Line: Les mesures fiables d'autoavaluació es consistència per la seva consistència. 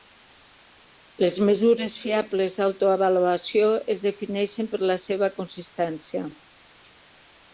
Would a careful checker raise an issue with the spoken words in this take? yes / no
yes